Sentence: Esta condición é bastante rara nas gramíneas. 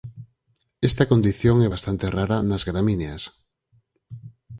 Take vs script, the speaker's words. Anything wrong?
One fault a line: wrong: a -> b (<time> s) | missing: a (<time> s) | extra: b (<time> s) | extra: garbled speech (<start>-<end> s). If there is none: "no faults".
no faults